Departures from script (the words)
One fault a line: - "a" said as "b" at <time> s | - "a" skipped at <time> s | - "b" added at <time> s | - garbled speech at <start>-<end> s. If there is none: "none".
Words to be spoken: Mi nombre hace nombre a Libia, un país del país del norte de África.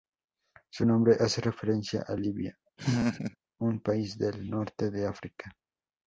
- "Mi" said as "Su" at 0.7 s
- "nombre" said as "referencia" at 1.4 s
- "país del" skipped at 4.5 s